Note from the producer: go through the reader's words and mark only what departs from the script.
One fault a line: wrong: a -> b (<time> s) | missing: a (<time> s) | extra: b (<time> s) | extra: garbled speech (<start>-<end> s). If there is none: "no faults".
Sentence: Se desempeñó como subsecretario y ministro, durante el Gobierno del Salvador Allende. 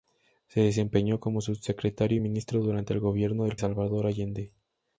no faults